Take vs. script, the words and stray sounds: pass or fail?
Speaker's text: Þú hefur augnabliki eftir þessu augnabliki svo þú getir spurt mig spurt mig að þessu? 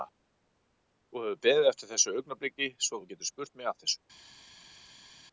fail